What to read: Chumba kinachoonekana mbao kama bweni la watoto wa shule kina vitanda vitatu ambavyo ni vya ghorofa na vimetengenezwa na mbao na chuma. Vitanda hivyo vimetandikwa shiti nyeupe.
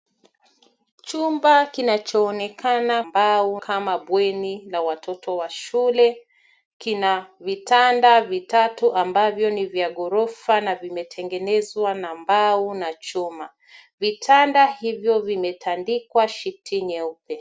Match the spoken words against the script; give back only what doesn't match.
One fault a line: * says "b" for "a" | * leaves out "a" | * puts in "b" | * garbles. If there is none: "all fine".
all fine